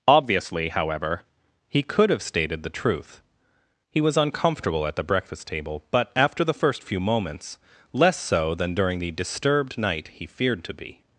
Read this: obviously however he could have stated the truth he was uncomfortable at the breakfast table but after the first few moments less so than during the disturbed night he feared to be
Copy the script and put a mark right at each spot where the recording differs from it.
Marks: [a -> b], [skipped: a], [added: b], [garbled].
obviously however he could have stated the truth he was uncomfortable at the breakfast table but after the first few moments less so than during the disturbed night he feared to be